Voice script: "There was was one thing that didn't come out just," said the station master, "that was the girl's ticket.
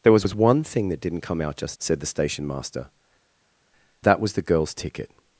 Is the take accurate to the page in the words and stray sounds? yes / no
yes